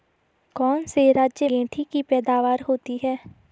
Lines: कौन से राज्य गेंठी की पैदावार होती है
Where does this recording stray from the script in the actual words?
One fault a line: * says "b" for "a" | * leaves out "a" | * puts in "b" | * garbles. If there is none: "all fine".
all fine